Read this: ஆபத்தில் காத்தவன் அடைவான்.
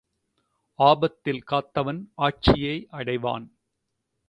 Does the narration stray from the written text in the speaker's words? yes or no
yes